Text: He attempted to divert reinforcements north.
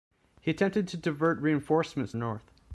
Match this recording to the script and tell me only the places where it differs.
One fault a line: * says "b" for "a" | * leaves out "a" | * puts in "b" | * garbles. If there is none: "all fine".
all fine